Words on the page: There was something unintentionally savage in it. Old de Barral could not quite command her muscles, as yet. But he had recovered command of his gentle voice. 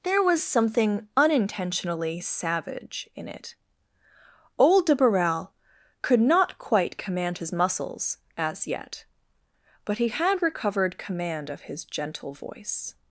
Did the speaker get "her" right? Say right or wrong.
wrong